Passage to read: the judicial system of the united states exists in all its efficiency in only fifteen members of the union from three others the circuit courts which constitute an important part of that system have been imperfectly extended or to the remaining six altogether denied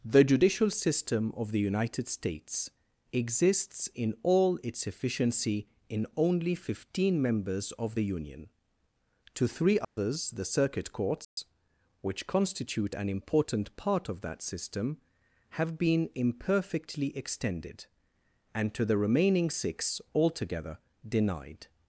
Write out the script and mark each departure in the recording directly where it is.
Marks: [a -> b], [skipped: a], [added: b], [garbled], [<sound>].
the judicial system of the united states exists in all its efficiency in only fifteen members of the union [from -> to] three others [dropout] the circuit courts [dropout] which constitute an important part of that system have been imperfectly extended [or -> and] to the remaining six altogether denied